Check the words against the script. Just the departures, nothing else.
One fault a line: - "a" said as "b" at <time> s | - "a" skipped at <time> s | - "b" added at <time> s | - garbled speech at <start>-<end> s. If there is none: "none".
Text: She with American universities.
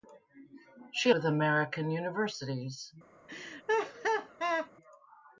none